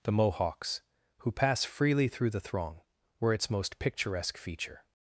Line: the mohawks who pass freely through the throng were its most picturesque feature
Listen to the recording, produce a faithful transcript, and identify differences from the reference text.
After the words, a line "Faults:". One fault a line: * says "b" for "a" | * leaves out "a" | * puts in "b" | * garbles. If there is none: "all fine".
the mohawks who pass freely through the throng were its most picturesque feature
Faults:
all fine